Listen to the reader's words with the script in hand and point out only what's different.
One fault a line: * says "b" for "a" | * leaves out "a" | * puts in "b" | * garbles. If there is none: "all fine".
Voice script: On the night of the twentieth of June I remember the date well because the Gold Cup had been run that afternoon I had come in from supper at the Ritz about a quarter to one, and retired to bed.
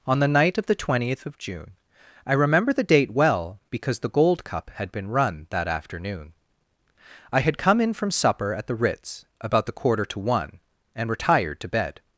* says "the" for "a"